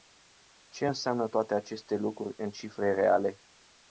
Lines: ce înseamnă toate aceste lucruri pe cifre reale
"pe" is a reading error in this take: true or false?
true